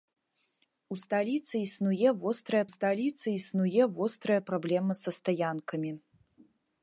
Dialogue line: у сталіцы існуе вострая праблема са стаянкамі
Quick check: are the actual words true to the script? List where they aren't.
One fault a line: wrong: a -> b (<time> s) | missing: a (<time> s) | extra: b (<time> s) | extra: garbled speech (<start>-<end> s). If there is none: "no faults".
extra: сталіцы існуе вострая (2.7 s)